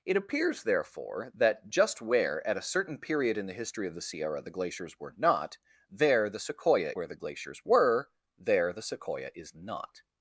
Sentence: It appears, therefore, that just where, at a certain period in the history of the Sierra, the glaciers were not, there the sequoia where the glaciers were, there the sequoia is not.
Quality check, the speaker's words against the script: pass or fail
pass